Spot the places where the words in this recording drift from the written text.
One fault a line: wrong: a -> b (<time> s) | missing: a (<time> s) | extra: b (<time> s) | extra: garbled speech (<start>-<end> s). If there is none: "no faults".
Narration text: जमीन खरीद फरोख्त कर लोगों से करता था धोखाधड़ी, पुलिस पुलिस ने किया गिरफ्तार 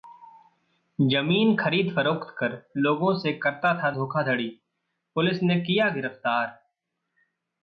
missing: पुलिस (5.4 s)